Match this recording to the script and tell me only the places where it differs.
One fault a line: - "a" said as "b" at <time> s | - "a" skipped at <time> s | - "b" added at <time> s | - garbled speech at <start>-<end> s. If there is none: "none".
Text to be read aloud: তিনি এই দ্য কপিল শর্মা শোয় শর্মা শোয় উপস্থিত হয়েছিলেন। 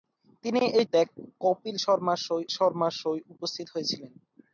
none